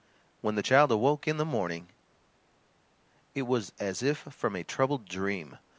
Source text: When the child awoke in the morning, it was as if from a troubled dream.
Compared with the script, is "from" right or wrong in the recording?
right